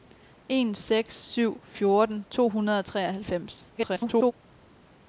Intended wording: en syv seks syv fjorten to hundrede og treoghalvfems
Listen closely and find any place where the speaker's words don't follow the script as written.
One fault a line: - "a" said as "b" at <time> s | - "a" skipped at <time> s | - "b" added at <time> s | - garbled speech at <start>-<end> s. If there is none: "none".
- "syv" skipped at 0.8 s
- garbled speech at 3.7-4.3 s